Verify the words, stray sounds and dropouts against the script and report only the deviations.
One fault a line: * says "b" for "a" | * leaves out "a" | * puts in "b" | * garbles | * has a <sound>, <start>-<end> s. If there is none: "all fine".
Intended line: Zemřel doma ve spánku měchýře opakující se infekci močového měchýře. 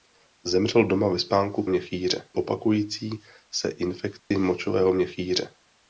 * has a dropout, 4.2-4.3 s